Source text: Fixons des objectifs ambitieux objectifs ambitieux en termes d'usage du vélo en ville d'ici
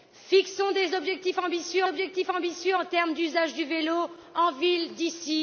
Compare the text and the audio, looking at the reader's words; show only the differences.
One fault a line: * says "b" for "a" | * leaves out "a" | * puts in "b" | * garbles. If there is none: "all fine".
all fine